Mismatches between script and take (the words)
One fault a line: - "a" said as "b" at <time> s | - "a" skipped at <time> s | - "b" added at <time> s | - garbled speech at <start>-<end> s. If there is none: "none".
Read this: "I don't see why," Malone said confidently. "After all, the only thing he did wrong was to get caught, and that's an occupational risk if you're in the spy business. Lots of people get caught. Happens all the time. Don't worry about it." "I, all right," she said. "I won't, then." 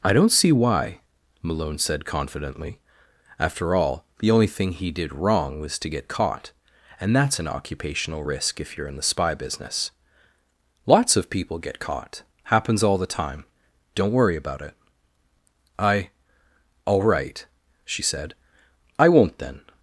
none